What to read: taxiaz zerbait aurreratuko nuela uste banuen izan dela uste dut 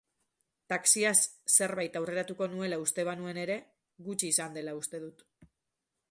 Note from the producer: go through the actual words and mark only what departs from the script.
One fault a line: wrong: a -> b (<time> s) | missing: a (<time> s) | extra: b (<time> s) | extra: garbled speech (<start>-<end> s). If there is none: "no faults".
extra: ere gutxi (3.4 s)